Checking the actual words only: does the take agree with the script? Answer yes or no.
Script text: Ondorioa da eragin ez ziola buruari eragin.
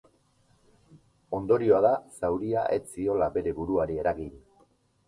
no